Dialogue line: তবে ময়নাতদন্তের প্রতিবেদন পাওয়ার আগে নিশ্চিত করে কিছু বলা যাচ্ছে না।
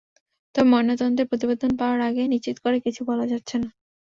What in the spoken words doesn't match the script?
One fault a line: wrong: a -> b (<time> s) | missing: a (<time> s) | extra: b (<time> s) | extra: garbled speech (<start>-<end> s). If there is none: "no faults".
no faults